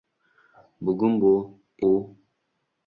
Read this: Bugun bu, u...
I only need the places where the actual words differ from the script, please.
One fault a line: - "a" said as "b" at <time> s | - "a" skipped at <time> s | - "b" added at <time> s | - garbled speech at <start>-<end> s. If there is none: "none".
none